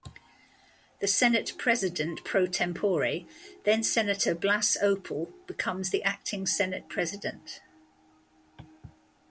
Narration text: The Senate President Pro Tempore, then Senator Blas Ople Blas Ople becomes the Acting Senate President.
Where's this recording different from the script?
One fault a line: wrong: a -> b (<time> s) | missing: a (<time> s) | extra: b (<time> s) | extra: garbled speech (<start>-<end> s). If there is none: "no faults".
missing: Blas Ople (5.3 s)